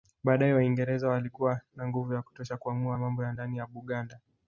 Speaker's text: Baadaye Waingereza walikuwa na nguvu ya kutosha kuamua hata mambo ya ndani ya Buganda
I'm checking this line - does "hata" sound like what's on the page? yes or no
no